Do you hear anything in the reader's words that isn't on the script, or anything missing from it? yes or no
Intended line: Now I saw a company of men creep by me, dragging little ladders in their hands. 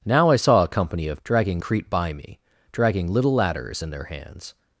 yes